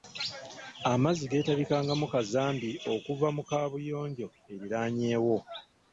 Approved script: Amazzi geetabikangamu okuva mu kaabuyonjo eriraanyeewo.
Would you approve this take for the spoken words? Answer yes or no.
no